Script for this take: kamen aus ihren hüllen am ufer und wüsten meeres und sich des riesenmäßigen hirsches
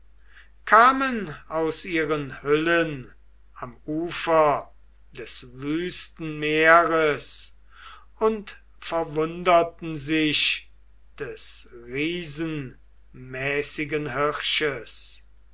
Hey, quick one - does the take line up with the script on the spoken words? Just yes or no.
no